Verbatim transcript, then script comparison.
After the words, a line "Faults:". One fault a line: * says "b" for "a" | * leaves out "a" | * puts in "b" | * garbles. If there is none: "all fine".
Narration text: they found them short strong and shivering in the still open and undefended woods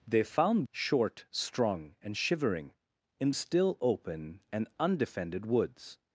they found short strong and shivering in still open and undefended woods
Faults:
* leaves out "them"
* leaves out "the"